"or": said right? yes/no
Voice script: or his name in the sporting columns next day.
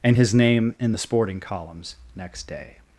no